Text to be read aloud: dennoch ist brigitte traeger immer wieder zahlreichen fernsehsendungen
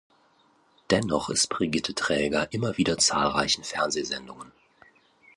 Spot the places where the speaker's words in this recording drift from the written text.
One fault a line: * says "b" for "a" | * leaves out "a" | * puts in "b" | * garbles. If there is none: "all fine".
all fine